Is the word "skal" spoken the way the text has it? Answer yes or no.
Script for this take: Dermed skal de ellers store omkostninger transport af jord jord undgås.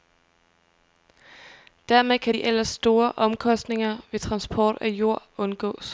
no